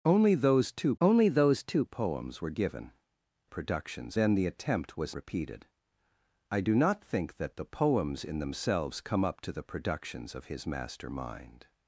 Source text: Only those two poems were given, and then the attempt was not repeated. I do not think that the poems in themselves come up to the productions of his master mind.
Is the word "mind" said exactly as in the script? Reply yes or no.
yes